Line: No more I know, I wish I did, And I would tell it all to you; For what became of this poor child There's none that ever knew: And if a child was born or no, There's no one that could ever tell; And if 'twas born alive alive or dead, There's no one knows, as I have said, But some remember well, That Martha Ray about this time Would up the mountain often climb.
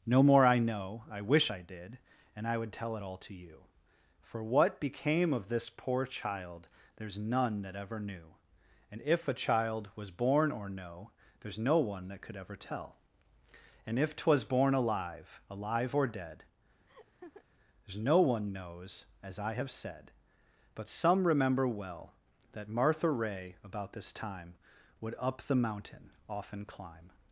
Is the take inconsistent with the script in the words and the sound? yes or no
yes